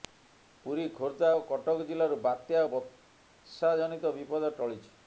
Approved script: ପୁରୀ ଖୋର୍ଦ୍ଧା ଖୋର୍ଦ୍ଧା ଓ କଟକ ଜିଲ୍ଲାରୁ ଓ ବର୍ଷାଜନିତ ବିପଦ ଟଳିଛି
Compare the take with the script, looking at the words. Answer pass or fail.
fail